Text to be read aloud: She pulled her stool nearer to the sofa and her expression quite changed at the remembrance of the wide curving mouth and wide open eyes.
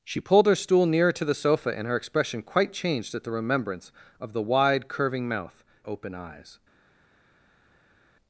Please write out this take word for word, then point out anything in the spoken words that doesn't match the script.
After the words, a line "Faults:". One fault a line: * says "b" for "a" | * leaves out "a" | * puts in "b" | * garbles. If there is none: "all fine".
She pulled her stool nearer to the sofa and her expression quite changed at the remembrance of the wide curving mouth open eyes.
Faults:
* leaves out "and wide"